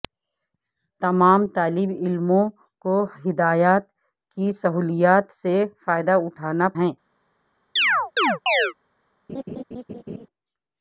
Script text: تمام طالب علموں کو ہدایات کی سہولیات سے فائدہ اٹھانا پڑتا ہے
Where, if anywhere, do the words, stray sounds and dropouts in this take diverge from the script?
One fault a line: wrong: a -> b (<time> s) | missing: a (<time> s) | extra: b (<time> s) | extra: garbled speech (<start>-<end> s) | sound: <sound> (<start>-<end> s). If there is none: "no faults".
missing: پڑتا (6.7 s)
sound: chirp (7.8-8.7 s)
sound: laugh (9.3-10.3 s)